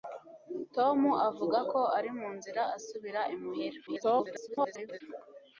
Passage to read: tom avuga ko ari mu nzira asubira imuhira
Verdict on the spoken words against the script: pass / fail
fail